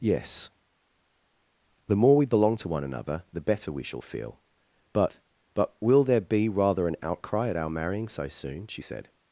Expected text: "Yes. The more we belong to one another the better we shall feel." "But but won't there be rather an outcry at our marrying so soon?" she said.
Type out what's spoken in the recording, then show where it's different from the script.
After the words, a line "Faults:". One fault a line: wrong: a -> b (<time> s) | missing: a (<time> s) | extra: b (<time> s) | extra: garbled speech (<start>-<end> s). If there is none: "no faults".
"Yes. The more we belong to one another the better we shall feel." "But but will there be rather an outcry at our marrying so soon?" she said.
Faults:
wrong: won't -> will (5.8 s)